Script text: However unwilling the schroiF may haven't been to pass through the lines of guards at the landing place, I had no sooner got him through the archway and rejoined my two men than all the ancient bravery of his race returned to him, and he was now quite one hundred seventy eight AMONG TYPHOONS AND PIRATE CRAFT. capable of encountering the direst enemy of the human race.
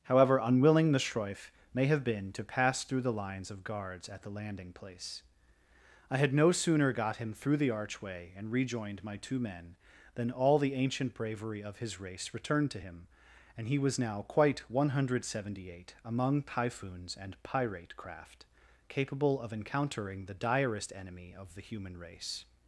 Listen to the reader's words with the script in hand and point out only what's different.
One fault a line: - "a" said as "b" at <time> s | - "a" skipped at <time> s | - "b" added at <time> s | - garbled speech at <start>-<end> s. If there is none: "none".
- "haven't" said as "have" at 1.9 s